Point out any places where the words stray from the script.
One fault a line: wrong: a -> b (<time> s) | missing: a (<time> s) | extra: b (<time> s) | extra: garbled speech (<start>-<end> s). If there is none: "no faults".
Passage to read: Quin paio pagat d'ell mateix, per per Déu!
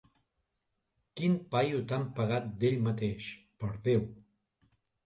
extra: tan (1.9 s)
missing: per (3.8 s)